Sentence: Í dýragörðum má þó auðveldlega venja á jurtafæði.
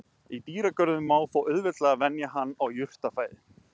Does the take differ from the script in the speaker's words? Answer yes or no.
yes